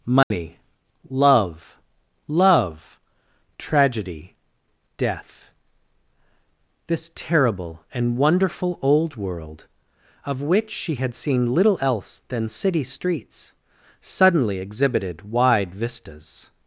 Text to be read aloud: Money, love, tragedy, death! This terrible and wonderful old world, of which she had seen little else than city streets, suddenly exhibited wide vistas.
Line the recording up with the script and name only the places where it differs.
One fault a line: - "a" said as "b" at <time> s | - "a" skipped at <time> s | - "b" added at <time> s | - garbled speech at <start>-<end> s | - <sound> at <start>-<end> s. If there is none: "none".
- dropout at 0.2-0.3 s
- "love" added at 2.3 s